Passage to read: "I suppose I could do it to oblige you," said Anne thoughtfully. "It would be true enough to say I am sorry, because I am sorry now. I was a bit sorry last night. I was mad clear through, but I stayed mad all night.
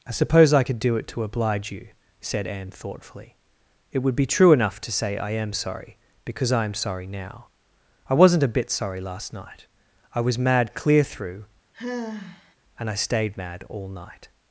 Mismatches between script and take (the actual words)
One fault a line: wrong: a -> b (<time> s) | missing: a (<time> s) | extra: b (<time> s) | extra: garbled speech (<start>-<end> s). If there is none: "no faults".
wrong: was -> wasn't (8.1 s)
wrong: but -> and (12.8 s)